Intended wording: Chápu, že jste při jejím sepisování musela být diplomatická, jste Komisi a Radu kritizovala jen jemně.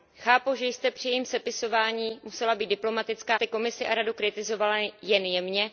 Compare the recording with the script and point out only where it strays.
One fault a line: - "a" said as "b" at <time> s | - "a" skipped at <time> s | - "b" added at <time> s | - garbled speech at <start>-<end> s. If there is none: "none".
none